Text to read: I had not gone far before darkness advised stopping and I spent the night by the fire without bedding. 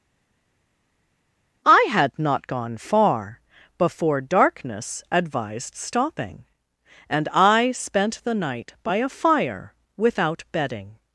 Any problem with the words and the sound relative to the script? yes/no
yes